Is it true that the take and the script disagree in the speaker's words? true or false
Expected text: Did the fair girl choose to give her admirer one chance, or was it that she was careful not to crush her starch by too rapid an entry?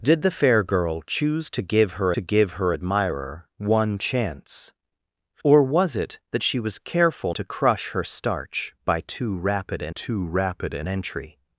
true